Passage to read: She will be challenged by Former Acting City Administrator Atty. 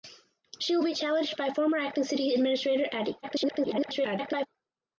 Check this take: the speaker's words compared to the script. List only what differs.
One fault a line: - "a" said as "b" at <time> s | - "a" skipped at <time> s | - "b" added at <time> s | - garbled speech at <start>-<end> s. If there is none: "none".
- garbled speech at 3.2-4.5 s